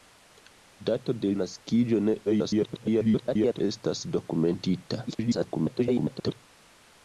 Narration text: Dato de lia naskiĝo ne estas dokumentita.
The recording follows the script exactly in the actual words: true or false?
false